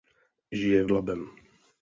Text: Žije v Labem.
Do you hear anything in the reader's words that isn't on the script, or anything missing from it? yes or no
no